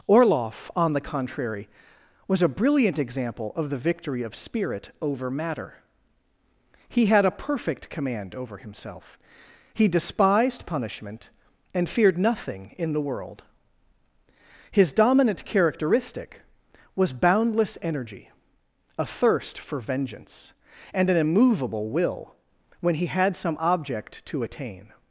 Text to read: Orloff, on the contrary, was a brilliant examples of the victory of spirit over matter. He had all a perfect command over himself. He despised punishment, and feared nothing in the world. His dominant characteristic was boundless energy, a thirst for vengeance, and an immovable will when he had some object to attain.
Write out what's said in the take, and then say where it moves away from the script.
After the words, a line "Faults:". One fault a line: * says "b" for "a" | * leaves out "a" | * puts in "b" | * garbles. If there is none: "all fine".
Orloff, on the contrary, was a brilliant example of the victory of spirit over matter. He had a perfect command over himself. He despised punishment, and feared nothing in the world. His dominant characteristic was boundless energy, a thirst for vengeance, and an immovable will when he had some object to attain.
Faults:
* says "example" for "examples"
* leaves out "all"